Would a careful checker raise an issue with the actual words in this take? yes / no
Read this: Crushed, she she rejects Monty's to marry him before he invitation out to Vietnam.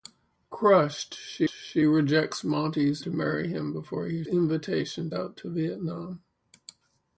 no